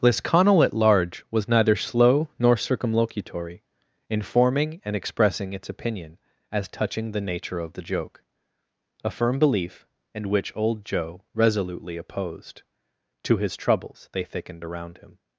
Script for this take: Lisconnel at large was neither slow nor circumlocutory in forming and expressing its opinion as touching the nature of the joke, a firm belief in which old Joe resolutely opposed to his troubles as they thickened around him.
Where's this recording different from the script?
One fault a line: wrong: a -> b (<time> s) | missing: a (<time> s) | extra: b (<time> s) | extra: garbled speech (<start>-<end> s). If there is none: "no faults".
wrong: in -> and (10.1 s)
missing: as (14.1 s)